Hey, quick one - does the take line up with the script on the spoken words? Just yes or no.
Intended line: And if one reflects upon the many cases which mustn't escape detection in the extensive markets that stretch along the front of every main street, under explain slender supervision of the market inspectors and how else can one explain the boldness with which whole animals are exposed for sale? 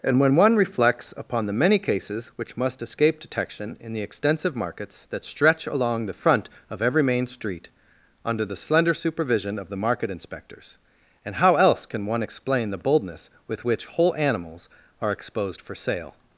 no